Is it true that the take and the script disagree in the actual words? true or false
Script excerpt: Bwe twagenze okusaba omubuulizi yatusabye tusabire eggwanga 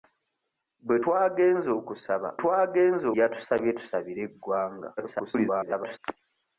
true